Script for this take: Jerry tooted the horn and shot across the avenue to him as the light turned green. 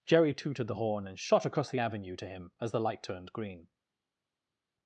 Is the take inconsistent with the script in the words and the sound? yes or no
no